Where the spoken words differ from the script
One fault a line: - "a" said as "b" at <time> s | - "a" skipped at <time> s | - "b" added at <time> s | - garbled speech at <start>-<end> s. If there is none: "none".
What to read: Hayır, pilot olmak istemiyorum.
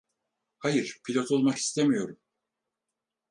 none